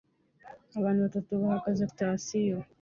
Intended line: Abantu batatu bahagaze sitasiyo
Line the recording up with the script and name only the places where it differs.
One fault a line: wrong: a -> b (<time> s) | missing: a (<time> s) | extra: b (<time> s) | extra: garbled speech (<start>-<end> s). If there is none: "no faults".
no faults